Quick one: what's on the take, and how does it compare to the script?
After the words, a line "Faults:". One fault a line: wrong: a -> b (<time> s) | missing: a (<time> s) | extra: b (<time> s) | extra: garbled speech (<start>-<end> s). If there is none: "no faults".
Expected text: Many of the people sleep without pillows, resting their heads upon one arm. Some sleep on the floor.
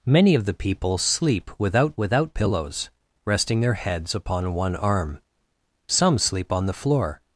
Many of the people sleep without without pillows, resting their heads upon one arm. Some sleep on the floor.
Faults:
extra: without (2.0 s)